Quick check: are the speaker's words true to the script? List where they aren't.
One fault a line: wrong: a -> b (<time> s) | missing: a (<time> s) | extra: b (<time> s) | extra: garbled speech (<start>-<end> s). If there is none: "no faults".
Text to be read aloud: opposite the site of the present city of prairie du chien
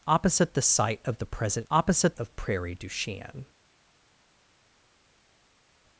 wrong: city -> opposite (1.7 s)